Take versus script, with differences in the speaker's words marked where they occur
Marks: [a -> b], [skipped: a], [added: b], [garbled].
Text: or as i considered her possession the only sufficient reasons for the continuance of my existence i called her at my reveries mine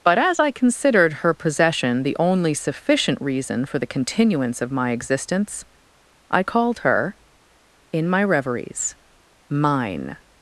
[or -> but] as i considered her possession the only sufficient [reasons -> reason] for the continuance of my existence i called her [at -> in] my reveries mine